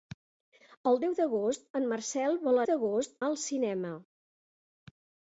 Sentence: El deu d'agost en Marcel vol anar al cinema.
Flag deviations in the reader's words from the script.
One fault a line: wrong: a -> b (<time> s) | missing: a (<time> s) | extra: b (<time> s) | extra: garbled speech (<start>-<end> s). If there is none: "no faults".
wrong: anar -> d'agost (2.7 s)